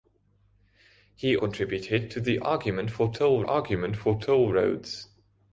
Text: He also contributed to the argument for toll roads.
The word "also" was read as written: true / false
false